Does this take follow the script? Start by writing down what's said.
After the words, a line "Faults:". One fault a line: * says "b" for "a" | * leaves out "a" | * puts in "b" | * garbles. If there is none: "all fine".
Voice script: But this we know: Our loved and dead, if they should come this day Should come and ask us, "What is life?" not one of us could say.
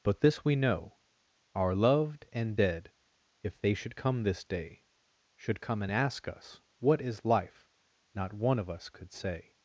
But this we know: Our loved and dead, if they should come this day Should come and ask us, "What is life?" not one of us could say.
Faults:
all fine